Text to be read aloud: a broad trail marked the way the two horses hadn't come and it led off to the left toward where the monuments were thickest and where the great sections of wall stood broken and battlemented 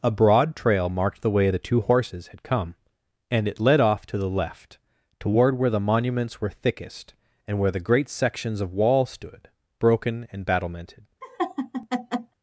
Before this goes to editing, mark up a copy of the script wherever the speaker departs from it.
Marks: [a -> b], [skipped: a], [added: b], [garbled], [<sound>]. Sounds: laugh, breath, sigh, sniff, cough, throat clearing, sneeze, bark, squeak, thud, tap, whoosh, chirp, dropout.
a broad trail marked the way the two horses [hadn't -> had] come and it led off to the left toward where the monuments were thickest and where the great sections of wall stood broken and battlemented [laugh]